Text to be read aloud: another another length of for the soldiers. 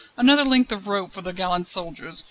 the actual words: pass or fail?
fail